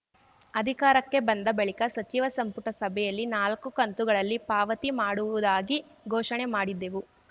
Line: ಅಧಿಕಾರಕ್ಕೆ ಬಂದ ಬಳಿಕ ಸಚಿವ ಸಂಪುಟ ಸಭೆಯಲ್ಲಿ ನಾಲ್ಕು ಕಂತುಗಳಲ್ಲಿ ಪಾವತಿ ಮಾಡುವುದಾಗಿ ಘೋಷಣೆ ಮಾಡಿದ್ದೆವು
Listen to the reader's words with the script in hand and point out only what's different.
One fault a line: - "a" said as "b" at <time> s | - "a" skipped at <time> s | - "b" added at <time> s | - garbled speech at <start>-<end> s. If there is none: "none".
none